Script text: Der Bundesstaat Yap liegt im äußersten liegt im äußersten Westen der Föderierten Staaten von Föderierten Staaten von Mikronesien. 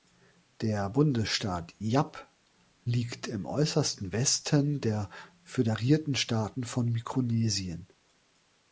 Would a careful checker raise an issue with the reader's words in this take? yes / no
yes